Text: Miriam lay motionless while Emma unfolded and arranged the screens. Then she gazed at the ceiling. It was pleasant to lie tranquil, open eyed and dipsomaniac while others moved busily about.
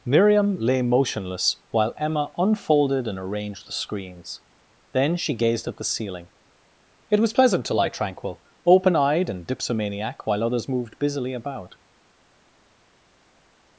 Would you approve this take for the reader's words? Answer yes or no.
yes